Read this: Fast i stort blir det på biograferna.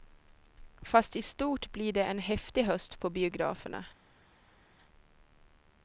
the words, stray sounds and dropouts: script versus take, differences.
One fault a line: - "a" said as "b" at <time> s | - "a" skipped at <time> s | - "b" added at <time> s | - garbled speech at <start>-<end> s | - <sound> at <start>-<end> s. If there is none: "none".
- "en häftig höst" added at 2.0 s